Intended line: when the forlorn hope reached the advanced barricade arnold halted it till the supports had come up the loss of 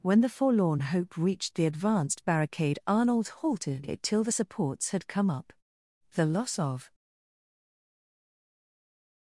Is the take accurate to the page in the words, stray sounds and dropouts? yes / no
yes